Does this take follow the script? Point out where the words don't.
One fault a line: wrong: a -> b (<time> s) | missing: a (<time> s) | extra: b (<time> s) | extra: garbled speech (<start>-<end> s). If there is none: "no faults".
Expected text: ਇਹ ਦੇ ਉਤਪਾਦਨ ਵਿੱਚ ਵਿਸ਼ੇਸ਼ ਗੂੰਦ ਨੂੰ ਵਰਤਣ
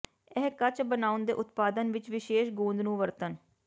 extra: ਕੱਚ ਬਣਾਉਣ (0.5 s)